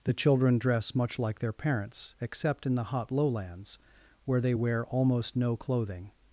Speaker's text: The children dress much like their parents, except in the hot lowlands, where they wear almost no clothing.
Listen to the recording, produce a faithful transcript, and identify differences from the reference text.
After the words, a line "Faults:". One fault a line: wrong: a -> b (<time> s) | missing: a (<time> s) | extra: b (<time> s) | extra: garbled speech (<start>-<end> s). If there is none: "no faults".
The children dress much like their parents, except in the hot lowlands, where they wear almost no clothing.
Faults:
no faults